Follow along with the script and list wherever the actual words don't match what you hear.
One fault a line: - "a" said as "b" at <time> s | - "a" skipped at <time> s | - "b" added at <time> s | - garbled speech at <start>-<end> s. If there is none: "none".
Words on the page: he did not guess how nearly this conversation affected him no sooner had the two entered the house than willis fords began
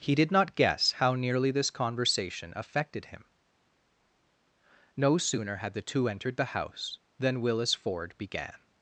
- "fords" said as "ford" at 7.7 s